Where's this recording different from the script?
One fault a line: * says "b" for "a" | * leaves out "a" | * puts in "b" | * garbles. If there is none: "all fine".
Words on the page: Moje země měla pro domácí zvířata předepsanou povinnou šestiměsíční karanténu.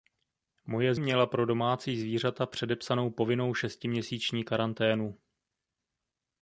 * leaves out "země"